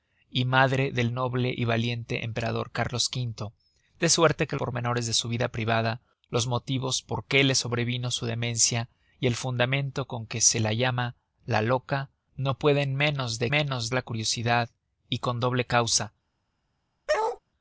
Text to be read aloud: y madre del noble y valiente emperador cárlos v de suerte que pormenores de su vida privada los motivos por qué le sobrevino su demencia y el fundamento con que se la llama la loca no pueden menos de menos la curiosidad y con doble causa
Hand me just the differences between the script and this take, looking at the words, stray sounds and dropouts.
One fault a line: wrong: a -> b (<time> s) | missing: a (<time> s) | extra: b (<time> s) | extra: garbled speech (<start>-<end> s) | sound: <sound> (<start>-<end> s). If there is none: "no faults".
sound: bark (17.1-17.4 s)